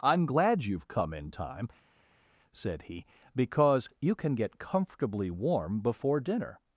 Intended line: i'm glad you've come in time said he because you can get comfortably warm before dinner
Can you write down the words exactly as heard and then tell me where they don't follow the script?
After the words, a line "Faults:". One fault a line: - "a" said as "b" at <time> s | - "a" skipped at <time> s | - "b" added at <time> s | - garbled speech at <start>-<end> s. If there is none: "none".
i'm glad you've come in time said he because you can get comfortably warm before dinner
Faults:
none